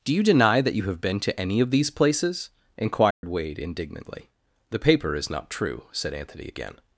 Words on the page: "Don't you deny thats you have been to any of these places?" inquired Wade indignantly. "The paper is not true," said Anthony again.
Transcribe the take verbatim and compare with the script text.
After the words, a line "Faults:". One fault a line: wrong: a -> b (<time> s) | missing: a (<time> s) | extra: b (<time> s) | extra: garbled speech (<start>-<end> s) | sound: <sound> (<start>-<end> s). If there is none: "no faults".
"Do you deny that you have been to any of these places?" inquired Wade indignantly. "The paper is not true," said Anthony again.
Faults:
wrong: Don't -> Do (0.0 s)
wrong: thats -> that (0.6 s)
sound: dropout (3.1-3.2 s)